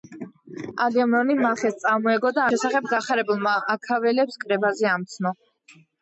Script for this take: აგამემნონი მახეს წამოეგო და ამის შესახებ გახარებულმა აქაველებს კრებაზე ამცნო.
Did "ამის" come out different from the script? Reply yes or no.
yes